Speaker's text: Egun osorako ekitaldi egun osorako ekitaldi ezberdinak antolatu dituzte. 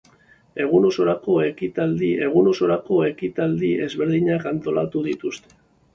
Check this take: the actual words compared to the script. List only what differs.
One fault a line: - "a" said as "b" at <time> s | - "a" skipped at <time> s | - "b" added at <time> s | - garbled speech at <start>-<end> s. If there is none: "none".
none